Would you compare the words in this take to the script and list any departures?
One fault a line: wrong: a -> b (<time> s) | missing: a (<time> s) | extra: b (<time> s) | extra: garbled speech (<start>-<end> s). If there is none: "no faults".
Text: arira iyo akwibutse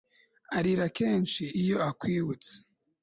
extra: kenshi (1.0 s)